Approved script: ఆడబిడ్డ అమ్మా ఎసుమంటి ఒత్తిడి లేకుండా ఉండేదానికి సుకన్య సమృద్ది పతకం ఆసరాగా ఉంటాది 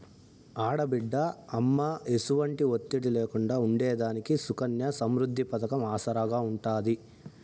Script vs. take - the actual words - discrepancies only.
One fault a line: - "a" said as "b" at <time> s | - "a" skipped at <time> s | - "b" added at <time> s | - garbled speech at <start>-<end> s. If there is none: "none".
none